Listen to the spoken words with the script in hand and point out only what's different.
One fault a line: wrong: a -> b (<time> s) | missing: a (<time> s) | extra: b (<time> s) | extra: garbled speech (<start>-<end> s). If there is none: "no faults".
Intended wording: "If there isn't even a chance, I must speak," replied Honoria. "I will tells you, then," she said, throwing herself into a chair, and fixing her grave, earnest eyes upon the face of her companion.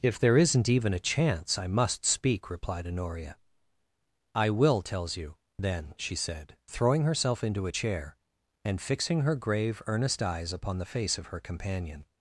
no faults